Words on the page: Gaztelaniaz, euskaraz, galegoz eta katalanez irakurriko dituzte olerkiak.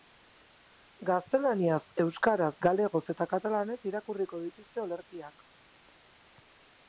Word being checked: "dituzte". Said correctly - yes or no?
yes